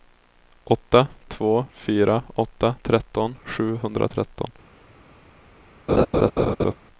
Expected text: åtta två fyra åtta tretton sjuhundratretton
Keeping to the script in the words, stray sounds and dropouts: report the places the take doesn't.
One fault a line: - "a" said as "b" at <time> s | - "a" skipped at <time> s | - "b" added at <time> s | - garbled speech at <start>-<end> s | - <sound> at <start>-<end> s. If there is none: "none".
- laugh at 5.9-6.7 s